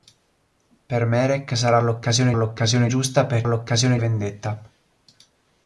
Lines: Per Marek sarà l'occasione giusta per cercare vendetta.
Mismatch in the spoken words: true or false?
true